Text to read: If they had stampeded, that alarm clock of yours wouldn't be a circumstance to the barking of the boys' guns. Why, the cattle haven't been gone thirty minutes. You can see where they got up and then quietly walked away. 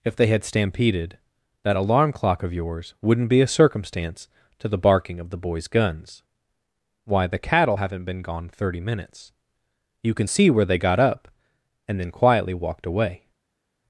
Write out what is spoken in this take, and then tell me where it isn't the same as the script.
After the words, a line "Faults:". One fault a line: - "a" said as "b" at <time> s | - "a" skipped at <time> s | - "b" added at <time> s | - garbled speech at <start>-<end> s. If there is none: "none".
If they had stampeded, that alarm clock of yours wouldn't be a circumstance to the barking of the boys' guns. Why, the cattle haven't been gone thirty minutes. You can see where they got up and then quietly walked away.
Faults:
none